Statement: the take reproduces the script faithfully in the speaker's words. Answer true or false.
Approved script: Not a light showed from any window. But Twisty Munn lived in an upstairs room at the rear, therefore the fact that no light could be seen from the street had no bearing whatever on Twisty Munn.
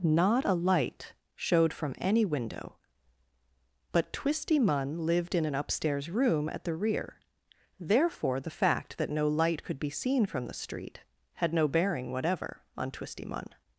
true